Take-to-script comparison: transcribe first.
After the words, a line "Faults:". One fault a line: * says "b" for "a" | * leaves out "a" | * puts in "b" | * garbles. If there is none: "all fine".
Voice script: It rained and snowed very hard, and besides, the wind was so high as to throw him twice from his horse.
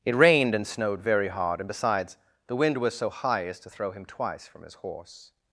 It rained and snowed very hard, and besides, the wind was so high as to throw him twice from his horse.
Faults:
all fine